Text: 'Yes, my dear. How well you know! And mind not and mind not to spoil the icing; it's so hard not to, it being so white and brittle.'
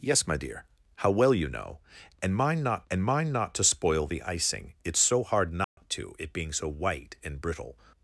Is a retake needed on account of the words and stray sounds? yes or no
yes